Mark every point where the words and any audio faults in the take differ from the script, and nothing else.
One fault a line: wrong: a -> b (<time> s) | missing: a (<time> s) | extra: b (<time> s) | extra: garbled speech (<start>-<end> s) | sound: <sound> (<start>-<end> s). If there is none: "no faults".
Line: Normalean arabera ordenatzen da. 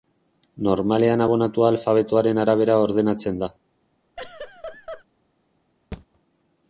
extra: abonatua alfabetoaren (1.3 s)
sound: laugh (4.2-5.0 s)
sound: thud (5.9-6.1 s)